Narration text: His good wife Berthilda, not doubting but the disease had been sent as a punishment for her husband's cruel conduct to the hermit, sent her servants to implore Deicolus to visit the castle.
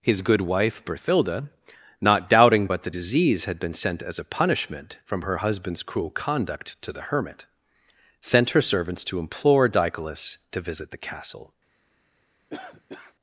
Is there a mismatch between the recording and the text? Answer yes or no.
yes